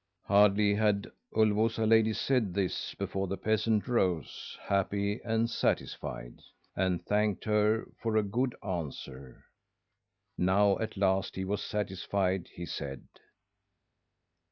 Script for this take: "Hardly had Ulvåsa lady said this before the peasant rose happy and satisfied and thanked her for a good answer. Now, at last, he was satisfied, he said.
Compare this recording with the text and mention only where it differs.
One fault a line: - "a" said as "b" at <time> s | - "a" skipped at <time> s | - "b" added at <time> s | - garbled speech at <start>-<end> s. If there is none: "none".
none